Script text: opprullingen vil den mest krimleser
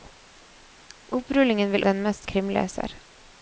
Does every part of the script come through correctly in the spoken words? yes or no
yes